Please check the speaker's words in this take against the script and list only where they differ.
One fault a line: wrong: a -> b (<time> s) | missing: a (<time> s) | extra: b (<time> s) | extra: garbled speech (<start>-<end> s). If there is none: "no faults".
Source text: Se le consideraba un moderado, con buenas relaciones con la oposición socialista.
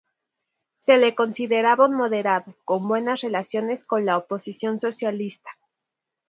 no faults